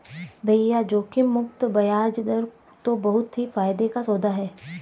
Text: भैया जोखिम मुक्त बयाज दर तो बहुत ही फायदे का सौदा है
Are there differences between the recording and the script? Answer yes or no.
no